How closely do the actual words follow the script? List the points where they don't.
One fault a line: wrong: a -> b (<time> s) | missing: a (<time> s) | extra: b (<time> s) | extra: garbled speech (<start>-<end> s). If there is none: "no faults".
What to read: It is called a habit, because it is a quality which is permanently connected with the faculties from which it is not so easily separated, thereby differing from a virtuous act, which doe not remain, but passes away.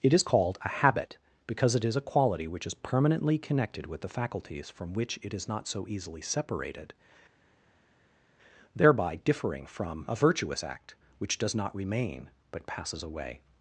wrong: doe -> does (11.4 s)